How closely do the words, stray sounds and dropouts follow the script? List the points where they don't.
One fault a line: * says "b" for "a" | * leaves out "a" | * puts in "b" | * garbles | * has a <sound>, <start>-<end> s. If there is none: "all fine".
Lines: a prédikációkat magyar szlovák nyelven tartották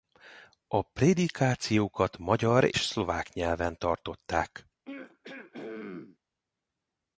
* has a throat clearing, 4.9-6.2 s